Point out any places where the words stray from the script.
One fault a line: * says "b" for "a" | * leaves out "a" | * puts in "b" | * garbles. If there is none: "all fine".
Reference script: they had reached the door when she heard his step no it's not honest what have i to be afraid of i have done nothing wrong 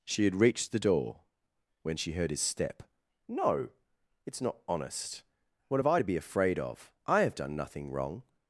* says "she" for "they"